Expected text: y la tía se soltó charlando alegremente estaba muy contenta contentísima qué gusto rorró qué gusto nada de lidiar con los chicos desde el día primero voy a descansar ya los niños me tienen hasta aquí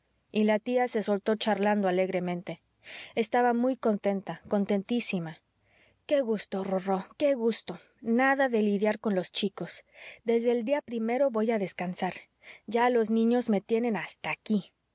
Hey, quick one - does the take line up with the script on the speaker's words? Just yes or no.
yes